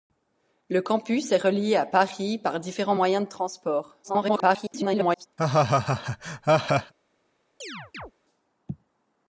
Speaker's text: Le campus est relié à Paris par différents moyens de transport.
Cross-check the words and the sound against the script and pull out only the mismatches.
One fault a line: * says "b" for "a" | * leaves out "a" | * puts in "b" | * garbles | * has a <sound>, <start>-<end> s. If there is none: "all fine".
* garbles
* has a laugh, 5.4-6.9 s
* has a chirp, 7.6-8.1 s